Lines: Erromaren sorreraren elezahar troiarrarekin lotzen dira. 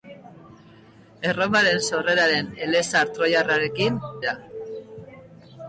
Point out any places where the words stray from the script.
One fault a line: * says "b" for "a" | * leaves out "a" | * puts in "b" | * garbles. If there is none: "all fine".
* leaves out "lotzen"